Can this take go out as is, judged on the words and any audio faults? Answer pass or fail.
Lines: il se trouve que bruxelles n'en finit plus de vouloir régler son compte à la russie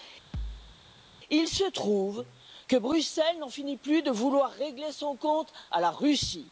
fail